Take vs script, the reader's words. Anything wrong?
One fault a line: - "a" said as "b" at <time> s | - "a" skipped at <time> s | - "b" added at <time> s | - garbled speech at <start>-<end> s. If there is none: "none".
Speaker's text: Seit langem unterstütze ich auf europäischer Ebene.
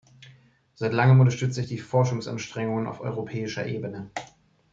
- "die Forschungsanstrengungen" added at 1.7 s